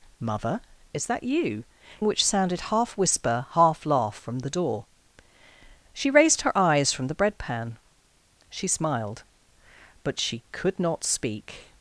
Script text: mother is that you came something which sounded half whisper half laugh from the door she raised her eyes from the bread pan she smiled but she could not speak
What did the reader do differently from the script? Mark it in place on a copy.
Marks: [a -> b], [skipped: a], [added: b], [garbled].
mother is that you [skipped: came something] which sounded half whisper half laugh from the door she raised her eyes from the bread pan she smiled but she could not speak